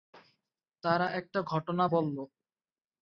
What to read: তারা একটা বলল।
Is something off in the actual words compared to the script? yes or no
yes